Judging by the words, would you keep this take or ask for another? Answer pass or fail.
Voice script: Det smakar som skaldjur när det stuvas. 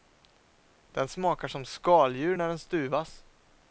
fail